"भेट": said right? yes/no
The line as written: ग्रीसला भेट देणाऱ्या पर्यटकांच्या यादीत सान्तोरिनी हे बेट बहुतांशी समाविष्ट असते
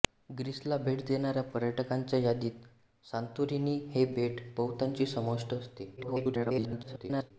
yes